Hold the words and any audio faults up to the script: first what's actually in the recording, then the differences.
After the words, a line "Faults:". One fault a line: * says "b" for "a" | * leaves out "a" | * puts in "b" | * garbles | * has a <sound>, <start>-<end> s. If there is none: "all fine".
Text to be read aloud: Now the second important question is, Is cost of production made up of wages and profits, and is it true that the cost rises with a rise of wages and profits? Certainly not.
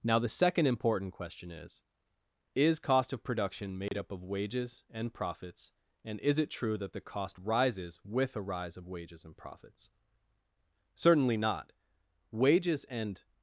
Now the second important question is, Is cost of production made up of wages and profits, and is it true that the cost rises with a rise of wages and profits? Certainly not. Wages and
Faults:
* has a dropout, 3.9-3.9 s
* puts in "Wages and"